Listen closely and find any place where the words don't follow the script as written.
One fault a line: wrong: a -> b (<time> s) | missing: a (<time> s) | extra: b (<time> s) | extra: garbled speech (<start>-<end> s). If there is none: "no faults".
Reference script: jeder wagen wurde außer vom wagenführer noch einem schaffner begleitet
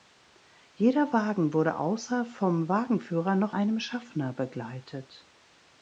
no faults